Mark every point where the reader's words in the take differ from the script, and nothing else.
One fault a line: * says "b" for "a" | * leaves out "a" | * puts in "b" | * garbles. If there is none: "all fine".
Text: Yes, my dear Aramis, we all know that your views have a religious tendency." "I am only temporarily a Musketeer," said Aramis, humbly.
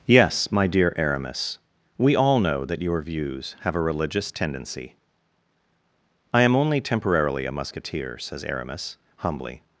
* says "says" for "said"